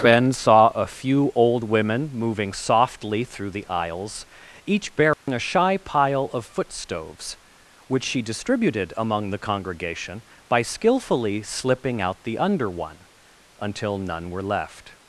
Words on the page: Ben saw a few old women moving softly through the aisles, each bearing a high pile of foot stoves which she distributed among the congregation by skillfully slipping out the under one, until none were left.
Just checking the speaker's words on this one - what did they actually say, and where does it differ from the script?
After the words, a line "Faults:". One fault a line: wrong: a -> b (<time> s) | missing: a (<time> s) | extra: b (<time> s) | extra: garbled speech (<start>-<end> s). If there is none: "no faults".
Ben saw a few old women moving softly through the aisles, each bearing a shy pile of foot stoves which she distributed among the congregation by skillfully slipping out the under one, until none were left.
Faults:
wrong: high -> shy (5.4 s)